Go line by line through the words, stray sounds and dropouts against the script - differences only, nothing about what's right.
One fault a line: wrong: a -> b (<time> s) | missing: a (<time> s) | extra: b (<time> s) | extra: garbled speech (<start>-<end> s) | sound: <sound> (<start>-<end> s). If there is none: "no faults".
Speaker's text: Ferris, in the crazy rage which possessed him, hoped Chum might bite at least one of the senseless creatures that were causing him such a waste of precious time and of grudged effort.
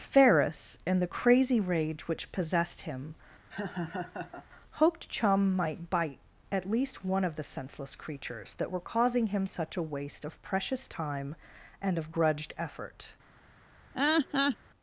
sound: laugh (3.5-4.5 s)
sound: laugh (13.9-14.6 s)